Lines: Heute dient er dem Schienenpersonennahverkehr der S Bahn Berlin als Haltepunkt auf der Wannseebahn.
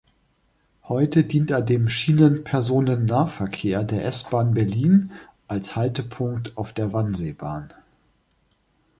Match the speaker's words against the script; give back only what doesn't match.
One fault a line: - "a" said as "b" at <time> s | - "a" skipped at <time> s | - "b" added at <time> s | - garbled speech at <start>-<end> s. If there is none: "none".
none